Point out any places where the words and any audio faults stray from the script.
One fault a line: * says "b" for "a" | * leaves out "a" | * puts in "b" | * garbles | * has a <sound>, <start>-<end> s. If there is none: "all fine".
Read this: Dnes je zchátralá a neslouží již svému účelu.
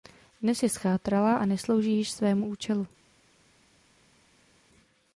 all fine